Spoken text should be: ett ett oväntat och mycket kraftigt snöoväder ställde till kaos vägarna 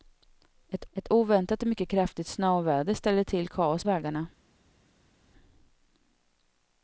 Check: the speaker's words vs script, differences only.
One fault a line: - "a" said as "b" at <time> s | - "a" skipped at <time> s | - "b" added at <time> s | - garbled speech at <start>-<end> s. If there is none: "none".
none